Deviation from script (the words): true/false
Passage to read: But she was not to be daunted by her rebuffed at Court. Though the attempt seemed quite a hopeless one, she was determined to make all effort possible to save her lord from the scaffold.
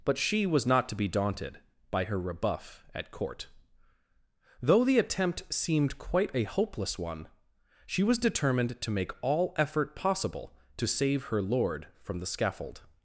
true